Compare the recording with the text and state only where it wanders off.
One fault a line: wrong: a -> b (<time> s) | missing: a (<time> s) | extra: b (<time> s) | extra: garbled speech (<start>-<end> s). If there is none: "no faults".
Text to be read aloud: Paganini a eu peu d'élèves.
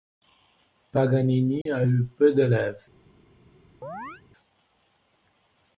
no faults